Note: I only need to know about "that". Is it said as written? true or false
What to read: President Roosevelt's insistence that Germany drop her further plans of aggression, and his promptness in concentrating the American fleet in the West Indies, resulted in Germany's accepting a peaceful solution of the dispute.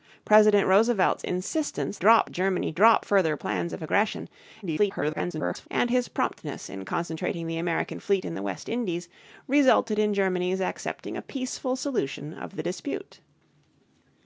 false